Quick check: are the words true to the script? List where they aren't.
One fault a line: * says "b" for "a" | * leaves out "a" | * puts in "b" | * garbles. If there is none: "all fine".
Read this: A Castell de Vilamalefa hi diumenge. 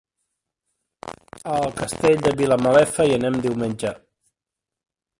* puts in "el"
* puts in "anem"